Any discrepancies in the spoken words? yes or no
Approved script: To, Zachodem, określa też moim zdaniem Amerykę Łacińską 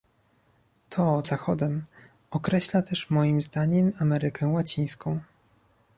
no